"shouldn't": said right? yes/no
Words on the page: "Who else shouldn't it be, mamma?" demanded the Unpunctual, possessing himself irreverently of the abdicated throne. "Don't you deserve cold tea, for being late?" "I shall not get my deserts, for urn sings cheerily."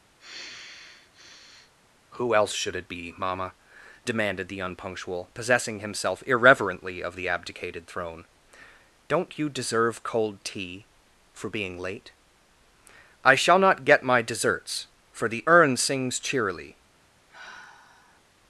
no